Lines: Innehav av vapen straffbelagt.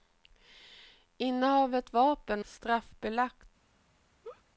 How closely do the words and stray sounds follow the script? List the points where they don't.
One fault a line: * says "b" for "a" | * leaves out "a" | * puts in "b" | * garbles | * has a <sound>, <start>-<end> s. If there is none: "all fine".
* has a laugh, 4.2-4.4 s